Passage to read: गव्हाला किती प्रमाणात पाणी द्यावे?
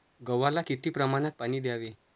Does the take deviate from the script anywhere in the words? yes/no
no